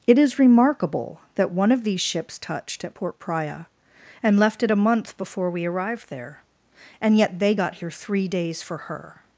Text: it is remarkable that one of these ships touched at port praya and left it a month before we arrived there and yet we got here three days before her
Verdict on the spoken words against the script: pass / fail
fail